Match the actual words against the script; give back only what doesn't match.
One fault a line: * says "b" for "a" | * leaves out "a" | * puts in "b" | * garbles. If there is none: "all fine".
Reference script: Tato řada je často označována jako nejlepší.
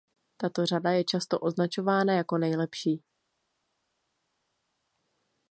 all fine